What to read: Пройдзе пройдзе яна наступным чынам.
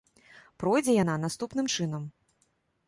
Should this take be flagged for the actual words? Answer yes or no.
yes